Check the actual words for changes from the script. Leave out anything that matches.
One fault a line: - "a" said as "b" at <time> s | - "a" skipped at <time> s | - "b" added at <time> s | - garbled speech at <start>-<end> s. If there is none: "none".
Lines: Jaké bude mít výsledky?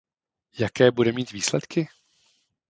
none